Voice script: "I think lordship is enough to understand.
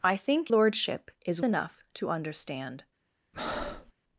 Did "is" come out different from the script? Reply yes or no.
no